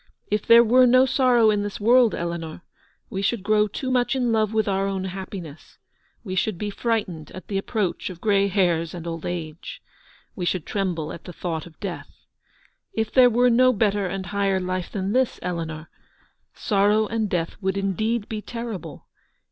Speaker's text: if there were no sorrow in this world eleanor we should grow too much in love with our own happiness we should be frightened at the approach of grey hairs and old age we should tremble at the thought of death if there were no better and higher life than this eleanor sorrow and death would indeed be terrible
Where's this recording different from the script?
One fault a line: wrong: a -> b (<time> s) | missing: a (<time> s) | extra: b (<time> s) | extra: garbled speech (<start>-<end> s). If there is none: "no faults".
no faults